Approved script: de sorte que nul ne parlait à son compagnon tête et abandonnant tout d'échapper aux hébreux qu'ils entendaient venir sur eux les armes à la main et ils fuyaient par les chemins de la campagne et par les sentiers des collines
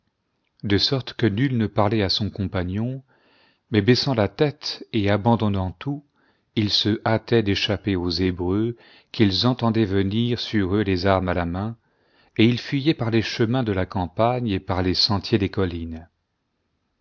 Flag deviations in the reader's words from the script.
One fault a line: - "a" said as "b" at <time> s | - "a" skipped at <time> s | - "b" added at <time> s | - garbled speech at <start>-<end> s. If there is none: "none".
- "mais baissant la" added at 3.7 s
- "ils se hâtaient" added at 6.5 s